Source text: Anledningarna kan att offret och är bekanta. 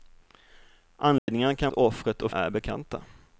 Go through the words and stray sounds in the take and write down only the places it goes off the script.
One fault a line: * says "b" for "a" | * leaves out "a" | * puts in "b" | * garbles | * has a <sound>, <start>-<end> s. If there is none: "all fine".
* has a dropout, 1.2-1.3 s